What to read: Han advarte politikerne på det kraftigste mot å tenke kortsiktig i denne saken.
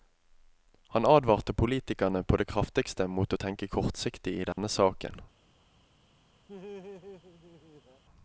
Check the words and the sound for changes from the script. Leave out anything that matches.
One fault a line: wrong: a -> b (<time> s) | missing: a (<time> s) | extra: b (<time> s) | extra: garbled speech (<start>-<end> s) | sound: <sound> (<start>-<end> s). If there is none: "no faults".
sound: dropout (4.5-4.6 s)
sound: laugh (6.5-8.0 s)